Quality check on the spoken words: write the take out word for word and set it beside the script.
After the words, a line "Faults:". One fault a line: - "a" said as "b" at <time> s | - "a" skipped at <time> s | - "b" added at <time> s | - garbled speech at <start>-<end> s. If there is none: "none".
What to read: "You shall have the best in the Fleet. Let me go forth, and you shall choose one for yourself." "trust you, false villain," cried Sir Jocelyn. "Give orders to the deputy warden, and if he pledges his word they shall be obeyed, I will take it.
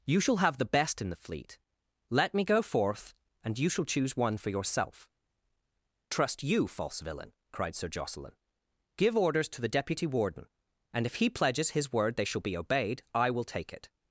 "You shall have the best in the Fleet. Let me go forth, and you shall choose one for yourself." "trust you, false villain," cried Sir Jocelyn. "Give orders to the deputy warden, and if he pledges his word they shall be obeyed, I will take it.
Faults:
none